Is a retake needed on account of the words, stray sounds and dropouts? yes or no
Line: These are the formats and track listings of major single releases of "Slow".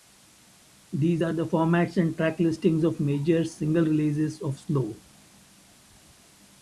no